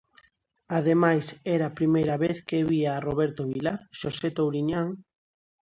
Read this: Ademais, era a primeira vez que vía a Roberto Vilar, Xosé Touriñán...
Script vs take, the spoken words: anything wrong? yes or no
no